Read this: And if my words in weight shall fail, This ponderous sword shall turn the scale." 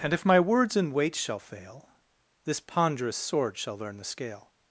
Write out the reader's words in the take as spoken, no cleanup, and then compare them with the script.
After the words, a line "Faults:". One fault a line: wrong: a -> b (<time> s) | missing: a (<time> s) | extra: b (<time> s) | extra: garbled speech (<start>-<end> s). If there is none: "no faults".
And if my words in weight shall fail, This ponderous sword shall learn the scale."
Faults:
wrong: turn -> learn (3.8 s)